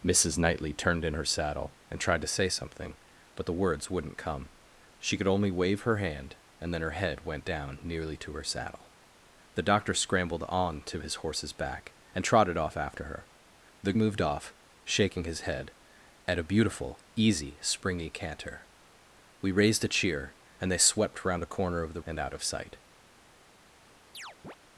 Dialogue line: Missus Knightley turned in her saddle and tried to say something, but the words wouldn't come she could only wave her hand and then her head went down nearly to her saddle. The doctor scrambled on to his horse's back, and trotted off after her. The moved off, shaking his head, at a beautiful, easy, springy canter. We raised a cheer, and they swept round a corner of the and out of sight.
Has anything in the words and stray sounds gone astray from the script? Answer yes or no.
yes